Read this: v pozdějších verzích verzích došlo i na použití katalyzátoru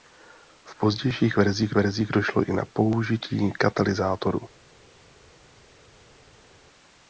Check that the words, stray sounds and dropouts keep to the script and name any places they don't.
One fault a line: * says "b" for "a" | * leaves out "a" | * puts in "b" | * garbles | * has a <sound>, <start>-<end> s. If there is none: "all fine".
all fine